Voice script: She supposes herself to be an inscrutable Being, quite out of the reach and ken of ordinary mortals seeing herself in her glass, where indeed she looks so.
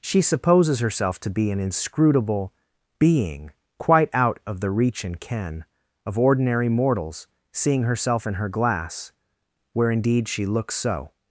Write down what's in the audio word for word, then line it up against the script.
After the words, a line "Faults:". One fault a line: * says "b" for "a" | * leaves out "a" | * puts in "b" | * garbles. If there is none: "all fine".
She supposes herself to be an inscrutable Being, quite out of the reach and ken of ordinary mortals seeing herself in her glass, where indeed she looks so.
Faults:
all fine